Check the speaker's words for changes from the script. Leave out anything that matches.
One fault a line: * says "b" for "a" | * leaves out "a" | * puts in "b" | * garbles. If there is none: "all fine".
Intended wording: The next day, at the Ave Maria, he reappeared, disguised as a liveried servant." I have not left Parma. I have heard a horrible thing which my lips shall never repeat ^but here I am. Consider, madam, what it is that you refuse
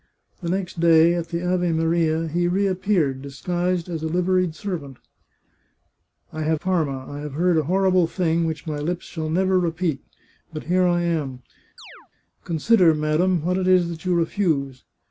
* leaves out "not left"